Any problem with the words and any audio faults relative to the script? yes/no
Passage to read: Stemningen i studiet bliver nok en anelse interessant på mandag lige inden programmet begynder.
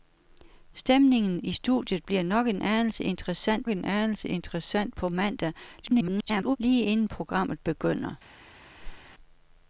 yes